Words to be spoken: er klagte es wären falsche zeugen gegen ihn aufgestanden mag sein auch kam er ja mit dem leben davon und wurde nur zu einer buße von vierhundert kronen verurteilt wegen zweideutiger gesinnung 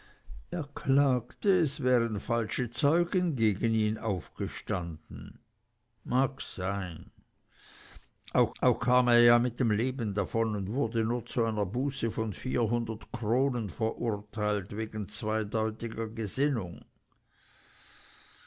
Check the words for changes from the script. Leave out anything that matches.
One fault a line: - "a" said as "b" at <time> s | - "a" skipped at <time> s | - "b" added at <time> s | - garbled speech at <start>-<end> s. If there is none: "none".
- "auch" added at 8.6 s